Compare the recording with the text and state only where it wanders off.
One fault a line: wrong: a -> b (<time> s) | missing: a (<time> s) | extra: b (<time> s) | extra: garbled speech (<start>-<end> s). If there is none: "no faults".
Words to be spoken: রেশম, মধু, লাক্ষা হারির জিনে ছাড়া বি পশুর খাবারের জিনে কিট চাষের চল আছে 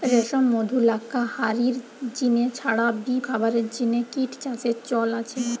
missing: পশুর (3.2 s)